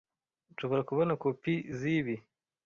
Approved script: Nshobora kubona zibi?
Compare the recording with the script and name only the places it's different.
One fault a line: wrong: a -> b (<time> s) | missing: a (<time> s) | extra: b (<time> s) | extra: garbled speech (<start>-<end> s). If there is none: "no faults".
extra: kopi (1.2 s)